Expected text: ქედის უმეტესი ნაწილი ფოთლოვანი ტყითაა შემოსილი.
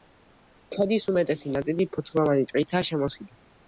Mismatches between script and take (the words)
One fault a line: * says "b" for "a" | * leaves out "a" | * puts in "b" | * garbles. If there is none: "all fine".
all fine